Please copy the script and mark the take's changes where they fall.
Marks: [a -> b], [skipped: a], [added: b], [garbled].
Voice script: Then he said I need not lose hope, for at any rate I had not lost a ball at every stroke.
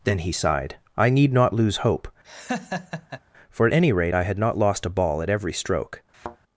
Then he [said -> sighed] I need not lose hope, for at any rate I had not lost a ball at every stroke.